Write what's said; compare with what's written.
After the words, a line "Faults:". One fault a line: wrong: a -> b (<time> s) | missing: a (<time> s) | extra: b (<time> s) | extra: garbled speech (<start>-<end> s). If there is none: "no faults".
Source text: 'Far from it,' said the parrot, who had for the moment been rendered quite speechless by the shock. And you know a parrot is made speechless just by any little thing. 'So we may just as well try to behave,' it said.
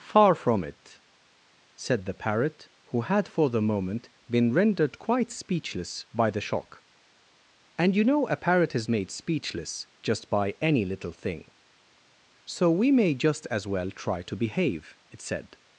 'Far from it,' said the parrot, who had for the moment been rendered quite speechless by the shock. And you know a parrot is made speechless just by any little thing. 'So we may just as well try to behave,' it said.
Faults:
no faults